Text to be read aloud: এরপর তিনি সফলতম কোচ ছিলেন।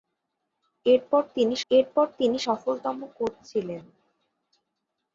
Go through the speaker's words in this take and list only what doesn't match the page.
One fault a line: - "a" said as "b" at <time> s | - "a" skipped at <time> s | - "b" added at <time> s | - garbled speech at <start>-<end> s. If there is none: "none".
- "এরপর তিনি" added at 1.7 s